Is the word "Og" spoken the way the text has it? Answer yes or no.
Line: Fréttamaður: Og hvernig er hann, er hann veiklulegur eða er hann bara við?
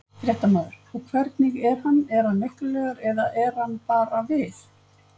yes